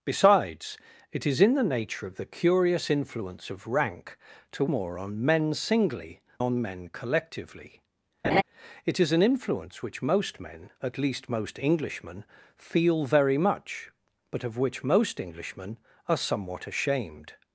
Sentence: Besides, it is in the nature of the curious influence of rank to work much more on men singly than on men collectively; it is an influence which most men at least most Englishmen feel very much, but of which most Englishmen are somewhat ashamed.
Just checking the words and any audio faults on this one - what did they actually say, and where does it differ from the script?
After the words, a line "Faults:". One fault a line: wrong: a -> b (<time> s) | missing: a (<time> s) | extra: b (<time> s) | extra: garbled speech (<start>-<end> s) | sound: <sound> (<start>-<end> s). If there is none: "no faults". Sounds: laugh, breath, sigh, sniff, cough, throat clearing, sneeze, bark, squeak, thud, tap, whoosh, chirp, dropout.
Besides, it is in the nature of the curious influence of rank to more on men singly on men collectively; it is an influence which most men at least most Englishmen feel very much, but of which most Englishmen are somewhat ashamed.
Faults:
missing: work much (4.7 s)
missing: than (6.2 s)
sound: laugh (8.2-8.4 s)